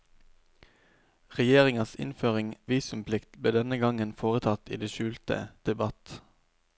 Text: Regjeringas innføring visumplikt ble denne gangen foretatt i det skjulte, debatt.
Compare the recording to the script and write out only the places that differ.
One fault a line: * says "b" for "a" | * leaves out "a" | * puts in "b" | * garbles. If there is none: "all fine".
all fine